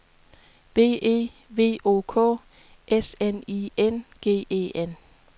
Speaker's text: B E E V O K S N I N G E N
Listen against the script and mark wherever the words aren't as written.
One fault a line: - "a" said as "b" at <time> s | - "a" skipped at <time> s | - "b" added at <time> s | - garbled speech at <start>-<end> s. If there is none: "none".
- "E" skipped at 1.3 s